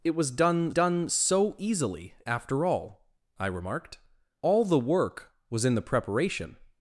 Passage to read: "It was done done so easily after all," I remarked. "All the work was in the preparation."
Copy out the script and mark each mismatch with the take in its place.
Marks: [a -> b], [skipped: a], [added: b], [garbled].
"It was done done so easily after all," I remarked. "All the work was in the preparation."